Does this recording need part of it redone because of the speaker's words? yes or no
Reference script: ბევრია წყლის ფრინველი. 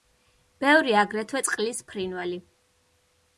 yes